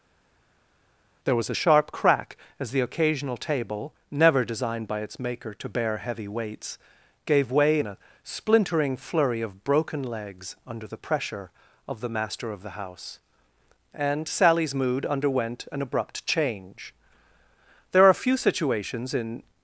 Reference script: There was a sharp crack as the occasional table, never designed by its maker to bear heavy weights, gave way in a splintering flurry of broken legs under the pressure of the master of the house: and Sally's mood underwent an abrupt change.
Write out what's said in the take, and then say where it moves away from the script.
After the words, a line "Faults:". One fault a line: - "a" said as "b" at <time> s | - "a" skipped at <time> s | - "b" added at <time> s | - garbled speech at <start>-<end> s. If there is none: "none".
There was a sharp crack as the occasional table, never designed by its maker to bear heavy weights, gave way in a splintering flurry of broken legs under the pressure of the master of the house: and Sally's mood underwent an abrupt change. There are few situations in
Faults:
- "There are few situations in" added at 17.9 s